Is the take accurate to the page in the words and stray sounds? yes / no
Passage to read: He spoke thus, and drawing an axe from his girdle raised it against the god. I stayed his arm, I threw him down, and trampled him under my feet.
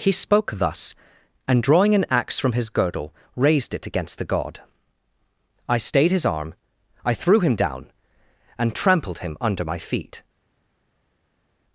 yes